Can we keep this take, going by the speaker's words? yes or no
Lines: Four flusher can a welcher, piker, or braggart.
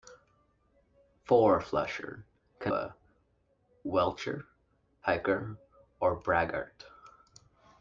yes